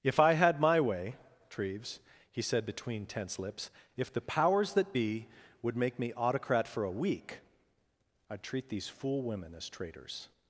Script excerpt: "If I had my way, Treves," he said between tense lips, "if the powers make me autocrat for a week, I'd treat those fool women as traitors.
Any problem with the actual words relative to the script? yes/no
yes